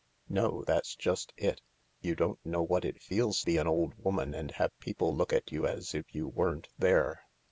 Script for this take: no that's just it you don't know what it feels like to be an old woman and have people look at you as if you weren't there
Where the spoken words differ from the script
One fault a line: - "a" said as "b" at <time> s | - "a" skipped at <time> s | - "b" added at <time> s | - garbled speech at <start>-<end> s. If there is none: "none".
- "like to" skipped at 3.5 s